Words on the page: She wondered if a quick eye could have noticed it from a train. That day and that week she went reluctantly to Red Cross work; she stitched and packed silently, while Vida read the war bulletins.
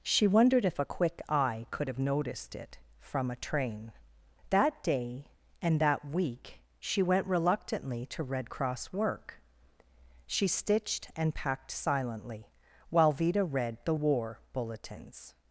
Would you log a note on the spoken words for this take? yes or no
no